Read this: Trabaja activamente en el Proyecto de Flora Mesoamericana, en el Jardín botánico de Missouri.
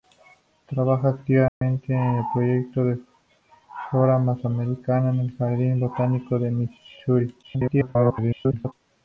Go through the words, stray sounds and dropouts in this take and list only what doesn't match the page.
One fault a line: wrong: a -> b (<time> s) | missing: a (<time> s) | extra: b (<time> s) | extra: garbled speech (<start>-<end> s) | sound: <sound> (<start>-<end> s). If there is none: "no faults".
sound: dropout (1.5-1.6 s)
extra: garbled speech (7.4-8.7 s)